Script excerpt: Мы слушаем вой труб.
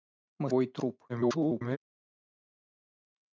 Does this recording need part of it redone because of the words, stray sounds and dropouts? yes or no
yes